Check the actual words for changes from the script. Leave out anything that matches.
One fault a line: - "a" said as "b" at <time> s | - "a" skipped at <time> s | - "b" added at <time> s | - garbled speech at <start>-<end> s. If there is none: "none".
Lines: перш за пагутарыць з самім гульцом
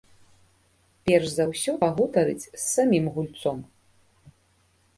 - "ўсё" added at 1.5 s